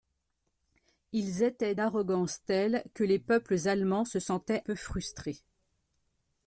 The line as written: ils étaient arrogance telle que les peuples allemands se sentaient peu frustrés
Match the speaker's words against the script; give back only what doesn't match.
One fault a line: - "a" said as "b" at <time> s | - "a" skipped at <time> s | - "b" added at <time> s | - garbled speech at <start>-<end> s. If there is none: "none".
none